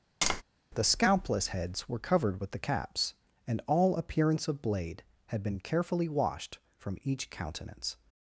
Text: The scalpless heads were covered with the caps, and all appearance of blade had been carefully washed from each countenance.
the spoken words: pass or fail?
pass